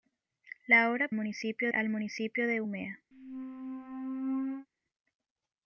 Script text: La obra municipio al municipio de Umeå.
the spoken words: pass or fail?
pass